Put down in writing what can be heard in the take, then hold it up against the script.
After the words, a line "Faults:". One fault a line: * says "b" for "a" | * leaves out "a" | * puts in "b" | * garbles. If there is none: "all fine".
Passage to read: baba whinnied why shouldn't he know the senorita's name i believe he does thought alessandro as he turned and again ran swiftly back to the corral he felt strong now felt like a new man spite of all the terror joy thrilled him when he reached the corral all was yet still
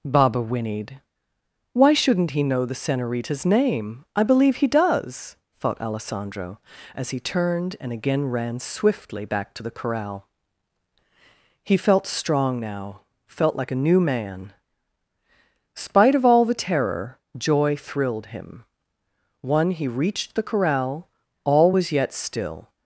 baba whinnied why shouldn't he know the senorita's name i believe he does thought alessandro as he turned and again ran swiftly back to the corral he felt strong now felt like a new man spite of all the terror joy thrilled him one he reached the corral all was yet still
Faults:
* says "one" for "when"